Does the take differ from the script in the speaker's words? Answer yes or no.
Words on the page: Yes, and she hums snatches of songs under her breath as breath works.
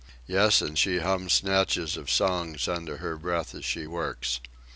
yes